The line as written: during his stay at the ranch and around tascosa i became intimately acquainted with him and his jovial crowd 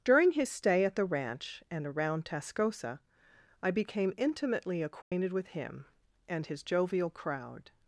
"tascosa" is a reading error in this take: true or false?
false